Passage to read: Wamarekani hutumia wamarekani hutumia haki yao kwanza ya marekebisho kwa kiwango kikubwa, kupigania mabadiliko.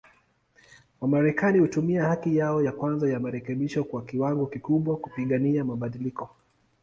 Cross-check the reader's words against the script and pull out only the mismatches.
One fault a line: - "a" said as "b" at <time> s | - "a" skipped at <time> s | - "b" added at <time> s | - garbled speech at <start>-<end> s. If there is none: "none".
- "wamarekani hutumia" skipped at 2.0 s
- "ya" added at 2.6 s